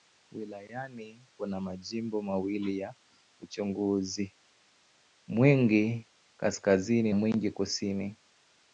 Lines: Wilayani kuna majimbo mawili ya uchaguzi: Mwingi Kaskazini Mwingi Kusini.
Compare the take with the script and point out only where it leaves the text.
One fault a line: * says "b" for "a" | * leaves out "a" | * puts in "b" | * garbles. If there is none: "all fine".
all fine